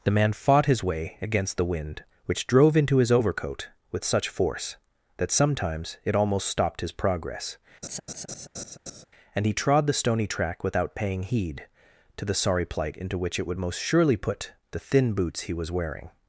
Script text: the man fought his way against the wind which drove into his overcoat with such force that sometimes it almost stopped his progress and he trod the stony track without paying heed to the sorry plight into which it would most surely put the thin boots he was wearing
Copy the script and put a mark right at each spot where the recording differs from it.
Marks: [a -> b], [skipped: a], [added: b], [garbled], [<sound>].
the man fought his way against the wind which drove into his overcoat with such force that sometimes it almost stopped his progress [laugh] and he trod the stony track without paying heed to the sorry plight into which it would most surely put the thin boots he was wearing